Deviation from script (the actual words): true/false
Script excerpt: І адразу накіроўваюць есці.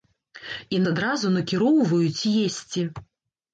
false